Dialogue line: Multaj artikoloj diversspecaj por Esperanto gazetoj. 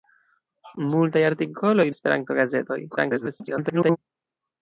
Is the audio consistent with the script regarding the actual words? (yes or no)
no